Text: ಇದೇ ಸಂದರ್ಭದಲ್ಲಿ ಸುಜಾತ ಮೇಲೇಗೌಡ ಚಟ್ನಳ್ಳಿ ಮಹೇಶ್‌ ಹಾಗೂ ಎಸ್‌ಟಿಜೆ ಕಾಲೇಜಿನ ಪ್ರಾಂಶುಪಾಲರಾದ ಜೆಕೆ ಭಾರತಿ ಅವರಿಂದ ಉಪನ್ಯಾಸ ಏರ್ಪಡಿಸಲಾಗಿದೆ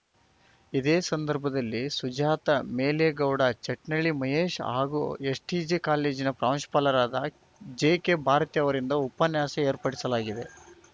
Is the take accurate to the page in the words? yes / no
yes